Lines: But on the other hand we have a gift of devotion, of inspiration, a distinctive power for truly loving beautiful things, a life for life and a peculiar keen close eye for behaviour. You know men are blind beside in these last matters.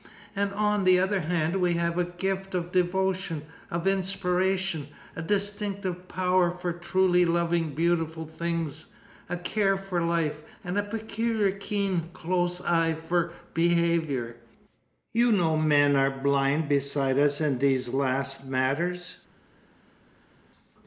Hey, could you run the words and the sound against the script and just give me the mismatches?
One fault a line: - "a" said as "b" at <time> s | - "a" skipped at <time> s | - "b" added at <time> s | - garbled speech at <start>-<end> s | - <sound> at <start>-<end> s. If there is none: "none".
- "But" said as "And" at 0.3 s
- "life" said as "care" at 9.4 s
- "us" added at 17.2 s